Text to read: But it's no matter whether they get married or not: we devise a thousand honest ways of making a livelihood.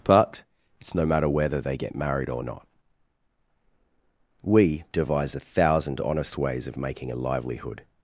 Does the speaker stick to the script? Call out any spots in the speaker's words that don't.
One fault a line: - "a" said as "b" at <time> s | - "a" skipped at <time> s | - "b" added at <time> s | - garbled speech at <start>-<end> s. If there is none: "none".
none